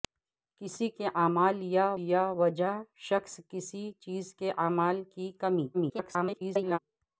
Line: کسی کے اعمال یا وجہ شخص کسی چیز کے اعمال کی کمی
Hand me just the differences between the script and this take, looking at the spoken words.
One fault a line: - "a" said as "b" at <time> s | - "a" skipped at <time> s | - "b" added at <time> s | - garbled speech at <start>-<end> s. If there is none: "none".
- "یا" added at 2.0 s
- garbled speech at 5.7-6.8 s